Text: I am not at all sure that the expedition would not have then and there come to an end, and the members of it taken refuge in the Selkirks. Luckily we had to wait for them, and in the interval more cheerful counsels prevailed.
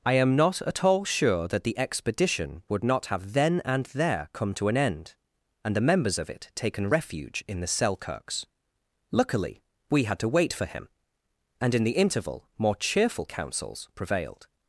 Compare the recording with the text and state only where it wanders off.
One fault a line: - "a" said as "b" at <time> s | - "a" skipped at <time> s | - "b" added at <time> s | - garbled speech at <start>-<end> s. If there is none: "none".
- "them" said as "him" at 10.6 s